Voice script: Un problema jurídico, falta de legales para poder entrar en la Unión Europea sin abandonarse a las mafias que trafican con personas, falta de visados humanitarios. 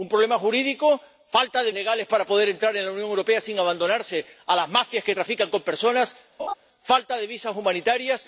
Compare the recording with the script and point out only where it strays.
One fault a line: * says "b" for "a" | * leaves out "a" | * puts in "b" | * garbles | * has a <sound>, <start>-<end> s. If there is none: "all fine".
* has a laugh, 6.4-6.5 s